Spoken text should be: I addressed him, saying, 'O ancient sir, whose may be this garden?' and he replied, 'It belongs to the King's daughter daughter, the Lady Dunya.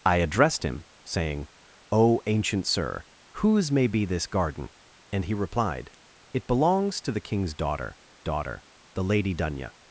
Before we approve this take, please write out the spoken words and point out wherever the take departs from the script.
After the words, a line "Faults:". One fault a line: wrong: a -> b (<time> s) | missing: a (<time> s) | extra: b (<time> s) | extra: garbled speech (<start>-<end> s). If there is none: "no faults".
I addressed him, saying, 'O ancient sir, whose may be this garden?' and he replied, 'It belongs to the King's daughter daughter, the Lady Dunya.
Faults:
no faults